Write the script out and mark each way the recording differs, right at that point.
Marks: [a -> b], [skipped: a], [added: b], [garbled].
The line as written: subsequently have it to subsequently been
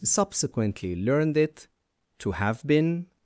subsequently [have -> learned] it to [subsequently -> have] been